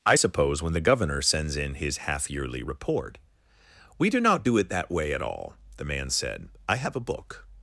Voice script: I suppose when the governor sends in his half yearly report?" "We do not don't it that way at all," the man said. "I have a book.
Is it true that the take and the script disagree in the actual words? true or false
true